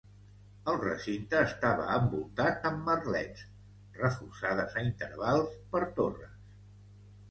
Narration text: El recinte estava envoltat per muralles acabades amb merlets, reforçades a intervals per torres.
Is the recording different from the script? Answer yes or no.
yes